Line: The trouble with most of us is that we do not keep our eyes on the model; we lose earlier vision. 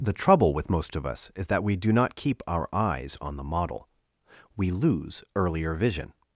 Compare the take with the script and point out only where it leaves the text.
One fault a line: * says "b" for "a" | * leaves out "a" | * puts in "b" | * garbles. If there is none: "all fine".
all fine